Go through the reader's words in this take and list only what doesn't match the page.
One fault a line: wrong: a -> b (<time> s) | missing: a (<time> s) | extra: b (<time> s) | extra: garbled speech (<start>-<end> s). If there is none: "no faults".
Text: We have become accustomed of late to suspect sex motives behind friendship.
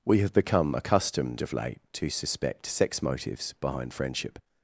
no faults